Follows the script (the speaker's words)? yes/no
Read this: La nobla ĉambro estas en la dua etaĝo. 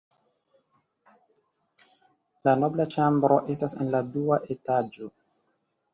yes